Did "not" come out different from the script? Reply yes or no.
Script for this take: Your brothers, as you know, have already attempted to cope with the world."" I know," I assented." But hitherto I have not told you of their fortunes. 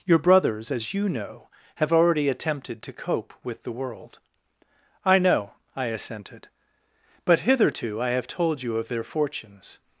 yes